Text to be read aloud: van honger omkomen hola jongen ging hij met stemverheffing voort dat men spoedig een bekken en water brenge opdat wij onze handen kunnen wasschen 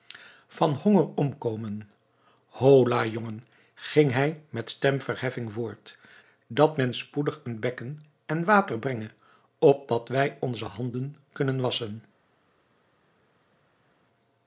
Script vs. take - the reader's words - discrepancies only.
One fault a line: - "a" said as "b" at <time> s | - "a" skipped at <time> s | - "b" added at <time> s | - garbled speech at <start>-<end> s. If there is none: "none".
none